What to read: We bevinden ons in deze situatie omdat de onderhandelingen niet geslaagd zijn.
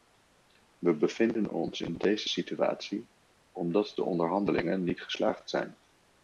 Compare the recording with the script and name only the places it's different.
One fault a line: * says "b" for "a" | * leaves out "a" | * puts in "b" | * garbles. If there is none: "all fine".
all fine